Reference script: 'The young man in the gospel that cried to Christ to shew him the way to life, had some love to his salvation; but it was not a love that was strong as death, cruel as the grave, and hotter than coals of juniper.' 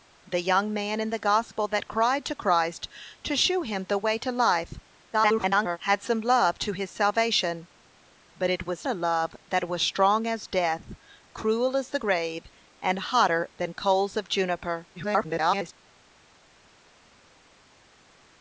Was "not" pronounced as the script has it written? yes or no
no